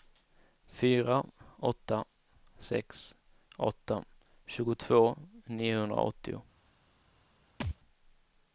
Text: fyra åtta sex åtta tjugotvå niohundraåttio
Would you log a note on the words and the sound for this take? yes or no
yes